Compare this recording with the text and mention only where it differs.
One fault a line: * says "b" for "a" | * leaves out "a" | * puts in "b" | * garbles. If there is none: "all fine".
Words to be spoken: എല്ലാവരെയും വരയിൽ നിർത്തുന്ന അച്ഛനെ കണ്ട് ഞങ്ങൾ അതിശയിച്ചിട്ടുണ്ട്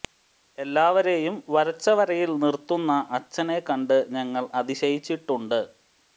* puts in "വരച്ച"